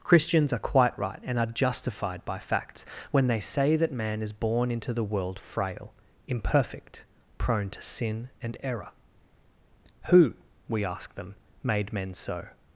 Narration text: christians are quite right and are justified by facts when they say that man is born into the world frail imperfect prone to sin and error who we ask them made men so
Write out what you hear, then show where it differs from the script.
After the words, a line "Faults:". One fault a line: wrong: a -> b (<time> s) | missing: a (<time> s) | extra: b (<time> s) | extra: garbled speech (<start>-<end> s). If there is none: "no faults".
christians are quite right and are justified by facts when they say that man is born into the world frail imperfect prone to sin and error who we ask them made men so
Faults:
no faults